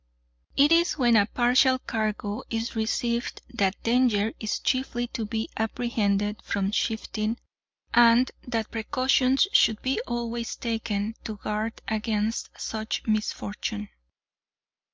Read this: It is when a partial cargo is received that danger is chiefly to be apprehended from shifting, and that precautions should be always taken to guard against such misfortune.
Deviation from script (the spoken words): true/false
false